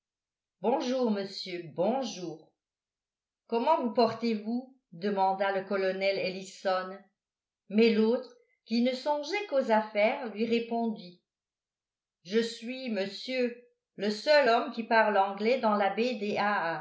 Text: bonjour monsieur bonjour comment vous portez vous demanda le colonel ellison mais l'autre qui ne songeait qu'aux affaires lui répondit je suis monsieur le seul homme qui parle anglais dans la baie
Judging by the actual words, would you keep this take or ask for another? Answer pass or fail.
pass